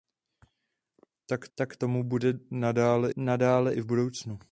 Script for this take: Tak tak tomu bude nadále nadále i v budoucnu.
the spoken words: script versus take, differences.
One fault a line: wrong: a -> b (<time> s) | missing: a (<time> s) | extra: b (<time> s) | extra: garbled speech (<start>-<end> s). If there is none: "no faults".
no faults